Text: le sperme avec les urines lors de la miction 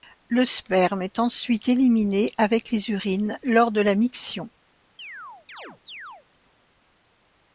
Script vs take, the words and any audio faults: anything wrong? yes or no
yes